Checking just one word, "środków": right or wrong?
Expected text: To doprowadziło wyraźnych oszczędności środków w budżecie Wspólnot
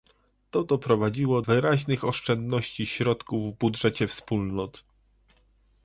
right